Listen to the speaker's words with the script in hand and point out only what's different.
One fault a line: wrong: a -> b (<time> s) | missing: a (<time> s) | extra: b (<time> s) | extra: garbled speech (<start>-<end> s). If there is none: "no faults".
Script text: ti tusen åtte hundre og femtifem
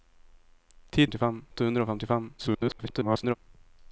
wrong: tusen -> femtifem (1.0 s)
extra: garbled speech (2.4-3.4 s)